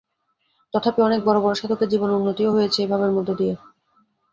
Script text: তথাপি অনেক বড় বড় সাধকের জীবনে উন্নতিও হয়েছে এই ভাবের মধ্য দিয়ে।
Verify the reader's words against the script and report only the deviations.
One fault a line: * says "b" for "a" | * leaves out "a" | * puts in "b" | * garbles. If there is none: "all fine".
all fine